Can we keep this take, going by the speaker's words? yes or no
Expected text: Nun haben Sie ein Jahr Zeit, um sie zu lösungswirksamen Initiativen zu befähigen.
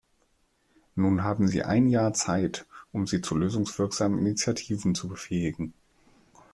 yes